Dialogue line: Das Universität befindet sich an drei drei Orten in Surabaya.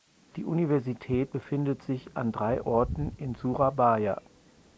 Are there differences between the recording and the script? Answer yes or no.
yes